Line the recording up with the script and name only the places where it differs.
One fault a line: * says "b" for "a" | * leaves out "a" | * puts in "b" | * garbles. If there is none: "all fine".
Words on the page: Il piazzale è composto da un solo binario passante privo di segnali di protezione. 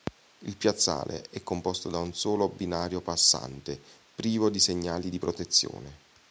all fine